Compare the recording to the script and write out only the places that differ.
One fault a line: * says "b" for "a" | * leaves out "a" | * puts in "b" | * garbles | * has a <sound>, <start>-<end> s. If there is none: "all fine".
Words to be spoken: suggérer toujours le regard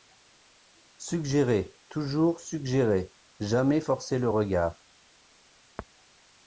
* puts in "suggérer jamais forcer"